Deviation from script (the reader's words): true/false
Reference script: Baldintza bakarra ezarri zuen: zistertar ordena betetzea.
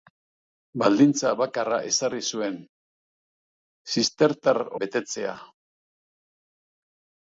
true